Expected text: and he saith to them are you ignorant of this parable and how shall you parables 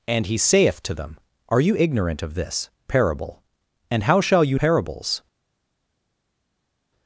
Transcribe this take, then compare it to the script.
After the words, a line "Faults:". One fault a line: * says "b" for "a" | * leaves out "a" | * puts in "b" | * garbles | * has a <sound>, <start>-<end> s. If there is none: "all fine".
and he saith to them are you ignorant of this parable and how shall you parables
Faults:
all fine